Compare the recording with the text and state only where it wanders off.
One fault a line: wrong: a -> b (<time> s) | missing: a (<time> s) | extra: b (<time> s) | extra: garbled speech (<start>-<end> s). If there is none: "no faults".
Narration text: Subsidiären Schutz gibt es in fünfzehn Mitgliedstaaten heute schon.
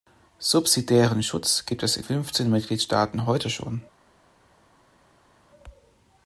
no faults